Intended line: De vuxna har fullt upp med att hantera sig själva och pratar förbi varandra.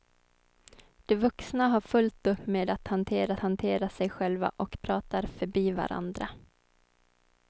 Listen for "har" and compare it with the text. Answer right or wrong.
right